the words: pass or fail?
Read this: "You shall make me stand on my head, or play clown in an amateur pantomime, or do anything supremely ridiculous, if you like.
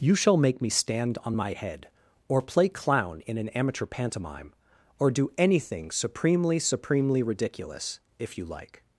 fail